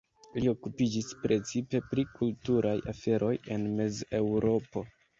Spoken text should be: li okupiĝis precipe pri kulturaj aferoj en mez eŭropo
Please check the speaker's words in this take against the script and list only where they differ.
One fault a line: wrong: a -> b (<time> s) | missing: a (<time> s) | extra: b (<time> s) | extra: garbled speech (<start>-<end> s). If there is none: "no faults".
no faults